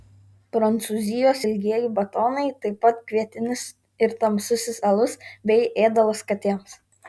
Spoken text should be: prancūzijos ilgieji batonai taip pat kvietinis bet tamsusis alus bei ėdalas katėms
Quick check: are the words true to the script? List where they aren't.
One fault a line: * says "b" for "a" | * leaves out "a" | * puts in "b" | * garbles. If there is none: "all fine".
* says "ir" for "bet"